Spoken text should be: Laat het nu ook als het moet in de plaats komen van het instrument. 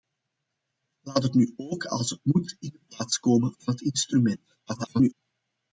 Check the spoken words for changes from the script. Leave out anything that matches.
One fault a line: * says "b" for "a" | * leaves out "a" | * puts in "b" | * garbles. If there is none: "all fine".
* garbles